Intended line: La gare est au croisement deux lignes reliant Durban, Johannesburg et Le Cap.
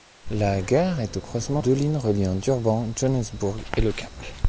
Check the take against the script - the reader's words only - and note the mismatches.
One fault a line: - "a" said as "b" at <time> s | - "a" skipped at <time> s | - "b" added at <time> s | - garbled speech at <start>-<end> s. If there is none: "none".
none